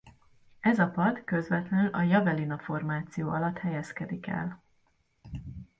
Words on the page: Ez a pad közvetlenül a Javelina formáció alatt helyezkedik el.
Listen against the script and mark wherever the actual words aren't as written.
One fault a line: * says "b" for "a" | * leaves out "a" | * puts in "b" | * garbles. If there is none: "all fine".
all fine